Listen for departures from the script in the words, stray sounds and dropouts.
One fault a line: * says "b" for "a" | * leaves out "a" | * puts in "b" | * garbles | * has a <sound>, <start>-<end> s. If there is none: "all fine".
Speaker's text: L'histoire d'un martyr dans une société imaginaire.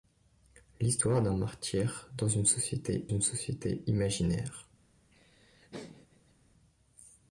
* puts in "une société"
* has a laugh, 5.1-6.3 s